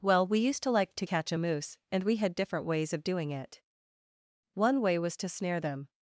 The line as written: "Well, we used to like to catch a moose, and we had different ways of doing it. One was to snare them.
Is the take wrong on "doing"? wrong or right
right